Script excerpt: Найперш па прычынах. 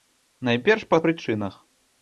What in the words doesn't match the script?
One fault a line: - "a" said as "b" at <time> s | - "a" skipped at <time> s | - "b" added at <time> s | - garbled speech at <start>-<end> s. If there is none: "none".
none